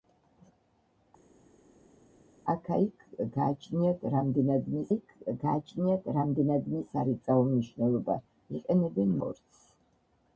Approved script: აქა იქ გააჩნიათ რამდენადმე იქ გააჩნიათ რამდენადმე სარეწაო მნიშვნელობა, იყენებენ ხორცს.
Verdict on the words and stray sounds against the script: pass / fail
pass